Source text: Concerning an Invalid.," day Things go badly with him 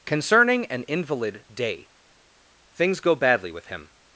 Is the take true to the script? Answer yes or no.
yes